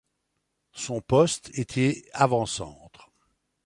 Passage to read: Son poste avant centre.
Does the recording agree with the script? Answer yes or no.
no